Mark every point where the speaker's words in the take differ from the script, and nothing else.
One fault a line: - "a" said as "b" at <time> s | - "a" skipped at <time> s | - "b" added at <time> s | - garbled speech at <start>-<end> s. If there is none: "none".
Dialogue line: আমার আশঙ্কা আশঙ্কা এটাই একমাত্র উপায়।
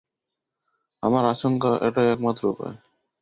- "আশঙ্কা" skipped at 1.7 s